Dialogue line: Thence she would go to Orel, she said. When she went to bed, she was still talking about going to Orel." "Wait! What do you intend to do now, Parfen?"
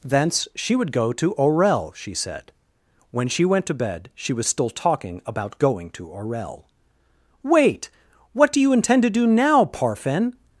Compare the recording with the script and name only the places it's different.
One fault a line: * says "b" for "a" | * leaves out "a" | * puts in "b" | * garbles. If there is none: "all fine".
all fine